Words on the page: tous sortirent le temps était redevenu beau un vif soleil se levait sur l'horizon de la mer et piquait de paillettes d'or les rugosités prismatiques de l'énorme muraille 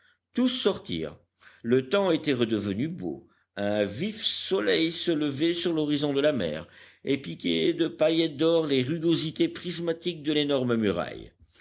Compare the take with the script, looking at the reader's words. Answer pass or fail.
pass